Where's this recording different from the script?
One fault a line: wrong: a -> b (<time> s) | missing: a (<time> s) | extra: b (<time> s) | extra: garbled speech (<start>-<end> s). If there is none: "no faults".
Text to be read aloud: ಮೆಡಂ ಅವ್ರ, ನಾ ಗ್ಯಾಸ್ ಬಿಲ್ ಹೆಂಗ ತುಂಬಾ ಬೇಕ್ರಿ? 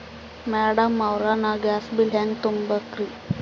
no faults